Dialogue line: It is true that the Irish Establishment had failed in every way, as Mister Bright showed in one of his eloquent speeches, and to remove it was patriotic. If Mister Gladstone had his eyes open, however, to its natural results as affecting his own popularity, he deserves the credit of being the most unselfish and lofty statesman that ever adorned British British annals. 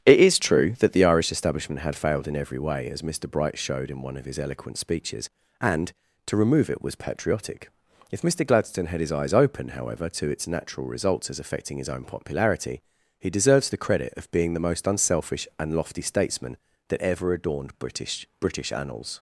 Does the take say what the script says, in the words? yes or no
yes